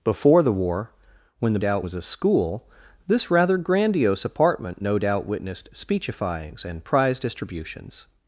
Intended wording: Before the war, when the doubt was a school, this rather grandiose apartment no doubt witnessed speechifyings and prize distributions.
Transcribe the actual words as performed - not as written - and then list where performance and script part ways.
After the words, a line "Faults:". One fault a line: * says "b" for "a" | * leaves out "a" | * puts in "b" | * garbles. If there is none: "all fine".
Before the war, when the doubt was a school, this rather grandiose apartment no doubt witnessed speechifyings and prize distributions.
Faults:
all fine